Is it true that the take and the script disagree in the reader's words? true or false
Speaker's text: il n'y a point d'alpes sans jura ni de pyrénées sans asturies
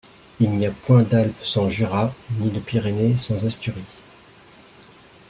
false